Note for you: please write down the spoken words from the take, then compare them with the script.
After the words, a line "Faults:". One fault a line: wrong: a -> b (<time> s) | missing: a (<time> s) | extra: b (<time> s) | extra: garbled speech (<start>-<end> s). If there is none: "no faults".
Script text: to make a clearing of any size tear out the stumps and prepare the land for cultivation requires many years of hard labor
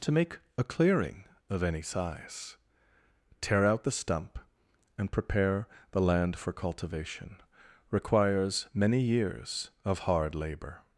to make a clearing of any size tear out the stump and prepare the land for cultivation requires many years of hard labor
Faults:
wrong: stumps -> stump (3.9 s)